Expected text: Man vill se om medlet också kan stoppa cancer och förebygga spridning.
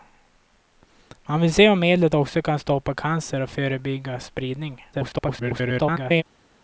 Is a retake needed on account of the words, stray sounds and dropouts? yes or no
yes